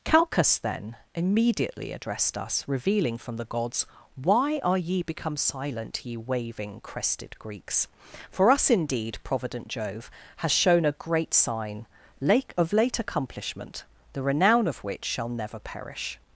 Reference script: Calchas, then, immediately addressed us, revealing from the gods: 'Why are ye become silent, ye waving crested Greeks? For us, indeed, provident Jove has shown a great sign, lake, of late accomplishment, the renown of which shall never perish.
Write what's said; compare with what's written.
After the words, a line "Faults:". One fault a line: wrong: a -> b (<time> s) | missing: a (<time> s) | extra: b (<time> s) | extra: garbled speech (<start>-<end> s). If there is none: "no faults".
Calchas, then, immediately addressed us, revealing from the gods: 'Why are ye become silent, ye waving crested Greeks? For us, indeed, provident Jove has shown a great sign, lake, of late accomplishment, the renown of which shall never perish.
Faults:
no faults